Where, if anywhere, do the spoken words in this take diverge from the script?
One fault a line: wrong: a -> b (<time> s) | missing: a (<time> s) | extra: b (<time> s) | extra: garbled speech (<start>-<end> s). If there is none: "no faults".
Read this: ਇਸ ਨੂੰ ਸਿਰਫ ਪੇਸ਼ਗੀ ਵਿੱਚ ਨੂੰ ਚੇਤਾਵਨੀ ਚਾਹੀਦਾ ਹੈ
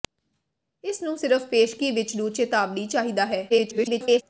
extra: garbled speech (3.5-4.2 s)